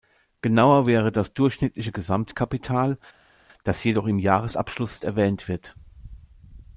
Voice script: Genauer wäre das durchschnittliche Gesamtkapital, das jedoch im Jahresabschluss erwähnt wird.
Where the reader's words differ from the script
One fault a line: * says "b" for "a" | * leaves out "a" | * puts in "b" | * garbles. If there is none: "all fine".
all fine